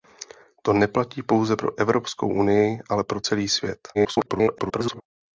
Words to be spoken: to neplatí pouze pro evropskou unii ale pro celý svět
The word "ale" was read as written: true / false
true